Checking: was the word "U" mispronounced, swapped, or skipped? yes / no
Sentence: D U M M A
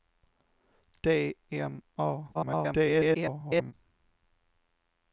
yes